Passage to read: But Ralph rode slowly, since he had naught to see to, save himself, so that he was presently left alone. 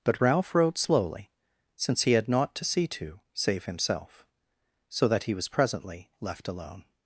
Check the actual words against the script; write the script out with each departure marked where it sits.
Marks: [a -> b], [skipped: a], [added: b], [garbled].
But Ralph rode slowly, since he had naught to see to, save himself, so that he was presently left alone.